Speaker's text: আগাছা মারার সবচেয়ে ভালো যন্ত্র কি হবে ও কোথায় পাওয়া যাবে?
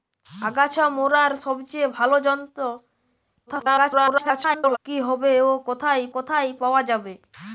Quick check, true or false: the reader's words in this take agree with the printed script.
false